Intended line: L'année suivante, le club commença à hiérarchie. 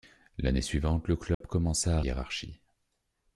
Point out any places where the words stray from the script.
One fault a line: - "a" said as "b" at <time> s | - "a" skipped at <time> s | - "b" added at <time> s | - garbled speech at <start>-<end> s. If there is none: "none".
none